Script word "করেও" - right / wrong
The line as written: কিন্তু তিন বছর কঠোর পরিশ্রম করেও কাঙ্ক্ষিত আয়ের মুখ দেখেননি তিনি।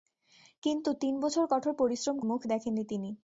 wrong